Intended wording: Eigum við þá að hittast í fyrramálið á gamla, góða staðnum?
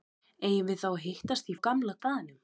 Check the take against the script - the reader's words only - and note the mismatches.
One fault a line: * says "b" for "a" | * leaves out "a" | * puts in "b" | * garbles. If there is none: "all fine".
* leaves out "fyrramálið"
* leaves out "góða"